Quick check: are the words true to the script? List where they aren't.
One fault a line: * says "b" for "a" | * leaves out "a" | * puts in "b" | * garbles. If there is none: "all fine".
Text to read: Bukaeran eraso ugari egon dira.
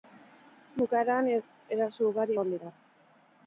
all fine